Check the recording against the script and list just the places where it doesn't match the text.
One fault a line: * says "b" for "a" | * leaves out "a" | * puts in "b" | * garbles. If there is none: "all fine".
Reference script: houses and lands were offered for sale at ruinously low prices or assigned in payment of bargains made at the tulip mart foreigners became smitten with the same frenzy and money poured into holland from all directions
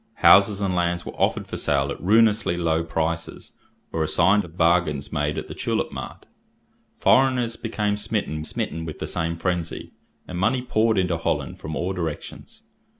* leaves out "in payment"
* puts in "smitten"